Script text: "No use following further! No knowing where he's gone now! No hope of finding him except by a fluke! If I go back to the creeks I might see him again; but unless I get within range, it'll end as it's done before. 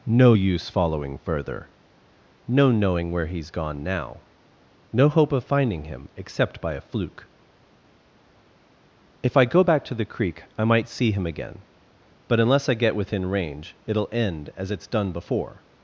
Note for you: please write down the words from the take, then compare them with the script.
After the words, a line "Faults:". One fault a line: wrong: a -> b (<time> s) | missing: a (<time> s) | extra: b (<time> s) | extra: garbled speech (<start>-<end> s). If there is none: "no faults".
"No use following further! No knowing where he's gone now! No hope of finding him except by a fluke! If I go back to the creek I might see him again; but unless I get within range, it'll end as it's done before.
Faults:
wrong: creeks -> creek (10.1 s)